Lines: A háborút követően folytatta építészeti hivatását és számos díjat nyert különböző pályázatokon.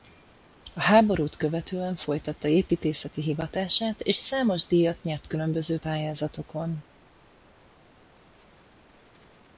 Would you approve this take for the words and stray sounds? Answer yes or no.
yes